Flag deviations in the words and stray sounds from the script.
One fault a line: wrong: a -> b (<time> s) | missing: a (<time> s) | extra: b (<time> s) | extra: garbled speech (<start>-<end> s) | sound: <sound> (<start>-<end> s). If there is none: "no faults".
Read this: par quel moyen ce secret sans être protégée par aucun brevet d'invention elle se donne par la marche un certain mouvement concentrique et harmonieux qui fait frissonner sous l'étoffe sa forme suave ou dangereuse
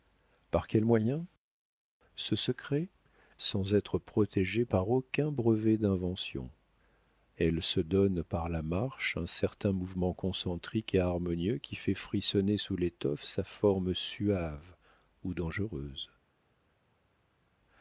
no faults